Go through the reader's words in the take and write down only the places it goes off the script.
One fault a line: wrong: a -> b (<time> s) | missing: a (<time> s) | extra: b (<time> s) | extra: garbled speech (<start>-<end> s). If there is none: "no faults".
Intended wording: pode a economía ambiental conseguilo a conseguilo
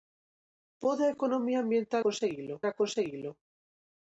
no faults